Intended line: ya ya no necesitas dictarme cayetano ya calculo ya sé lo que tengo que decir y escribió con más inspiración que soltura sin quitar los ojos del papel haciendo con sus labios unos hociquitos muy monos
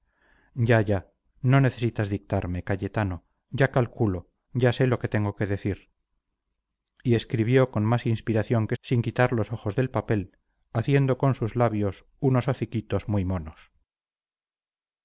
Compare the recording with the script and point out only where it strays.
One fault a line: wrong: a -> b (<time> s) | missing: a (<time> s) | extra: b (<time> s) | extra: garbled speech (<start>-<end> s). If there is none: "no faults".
missing: soltura (8.8 s)